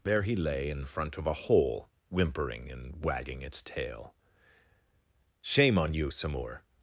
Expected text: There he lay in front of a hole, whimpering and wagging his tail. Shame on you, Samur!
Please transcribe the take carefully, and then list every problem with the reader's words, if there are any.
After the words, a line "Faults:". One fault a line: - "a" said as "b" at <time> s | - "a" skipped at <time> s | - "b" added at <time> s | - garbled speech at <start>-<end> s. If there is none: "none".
There he lay in front of a hole, whimpering and wagging its tail. Shame on you, Samur!
Faults:
- "his" said as "its" at 3.4 s